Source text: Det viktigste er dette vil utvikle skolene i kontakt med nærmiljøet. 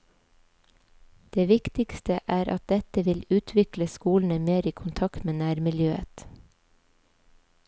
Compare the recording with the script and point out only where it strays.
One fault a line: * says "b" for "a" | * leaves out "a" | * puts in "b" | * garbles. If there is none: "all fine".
* puts in "at"
* puts in "mer"